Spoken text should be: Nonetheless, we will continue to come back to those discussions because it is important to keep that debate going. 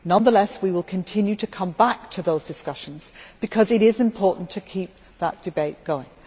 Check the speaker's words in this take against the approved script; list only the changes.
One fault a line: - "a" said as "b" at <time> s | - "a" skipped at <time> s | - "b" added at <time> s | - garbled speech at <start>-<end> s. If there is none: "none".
none